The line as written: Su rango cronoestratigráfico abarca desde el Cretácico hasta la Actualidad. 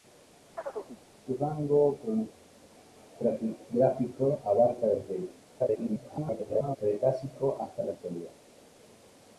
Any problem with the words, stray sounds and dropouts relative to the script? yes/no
yes